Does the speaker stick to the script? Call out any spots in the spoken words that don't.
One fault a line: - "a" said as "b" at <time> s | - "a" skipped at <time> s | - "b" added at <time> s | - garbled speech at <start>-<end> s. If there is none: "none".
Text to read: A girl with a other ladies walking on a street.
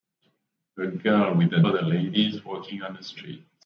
none